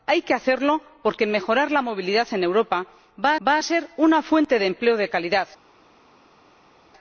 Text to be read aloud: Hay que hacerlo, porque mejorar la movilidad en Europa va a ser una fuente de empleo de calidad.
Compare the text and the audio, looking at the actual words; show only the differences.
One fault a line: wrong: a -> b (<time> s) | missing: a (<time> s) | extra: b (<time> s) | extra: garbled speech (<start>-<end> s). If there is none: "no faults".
extra: va (3.5 s)